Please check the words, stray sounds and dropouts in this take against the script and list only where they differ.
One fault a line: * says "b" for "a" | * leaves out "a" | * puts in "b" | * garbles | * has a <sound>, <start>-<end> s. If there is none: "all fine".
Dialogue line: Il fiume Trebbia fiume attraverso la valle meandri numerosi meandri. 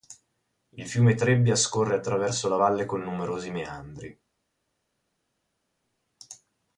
* says "scorre" for "fiume"
* says "con" for "meandri"